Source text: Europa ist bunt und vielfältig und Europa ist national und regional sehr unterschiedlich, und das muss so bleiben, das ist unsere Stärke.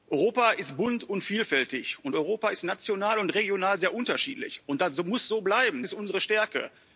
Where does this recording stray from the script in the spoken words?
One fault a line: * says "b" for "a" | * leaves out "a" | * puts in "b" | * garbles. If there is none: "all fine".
* leaves out "das"